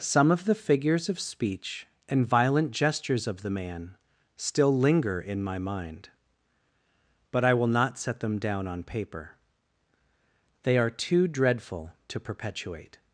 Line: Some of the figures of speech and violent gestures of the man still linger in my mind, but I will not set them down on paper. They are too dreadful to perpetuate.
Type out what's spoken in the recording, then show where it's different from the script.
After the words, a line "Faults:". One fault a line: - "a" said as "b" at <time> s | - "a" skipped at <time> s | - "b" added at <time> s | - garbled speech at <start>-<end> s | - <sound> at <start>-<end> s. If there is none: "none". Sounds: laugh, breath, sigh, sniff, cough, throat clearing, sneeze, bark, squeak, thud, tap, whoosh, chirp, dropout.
Some of the figures of speech and violent gestures of the man still linger in my mind, but I will not set them down on paper. They are too dreadful to perpetuate.
Faults:
none